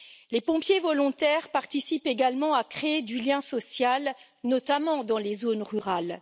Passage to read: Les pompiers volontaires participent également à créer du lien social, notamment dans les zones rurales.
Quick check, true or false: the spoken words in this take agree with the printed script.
true